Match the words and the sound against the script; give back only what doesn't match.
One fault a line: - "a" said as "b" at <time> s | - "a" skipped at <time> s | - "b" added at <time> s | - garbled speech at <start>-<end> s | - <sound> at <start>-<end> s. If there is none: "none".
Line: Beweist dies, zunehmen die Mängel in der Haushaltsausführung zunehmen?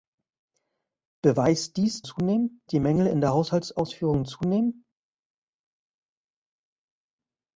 none